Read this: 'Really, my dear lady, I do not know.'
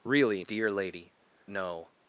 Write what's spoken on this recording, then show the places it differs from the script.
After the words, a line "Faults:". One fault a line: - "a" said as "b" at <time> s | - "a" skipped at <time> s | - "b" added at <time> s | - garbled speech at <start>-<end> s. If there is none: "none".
'Really, dear lady, know.'
Faults:
- "my" skipped at 0.4 s
- "I do not" skipped at 1.1 s